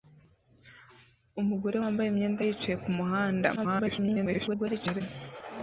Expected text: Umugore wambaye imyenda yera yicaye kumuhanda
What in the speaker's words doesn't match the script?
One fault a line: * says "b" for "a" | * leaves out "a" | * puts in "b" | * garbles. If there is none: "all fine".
* leaves out "yera"
* garbles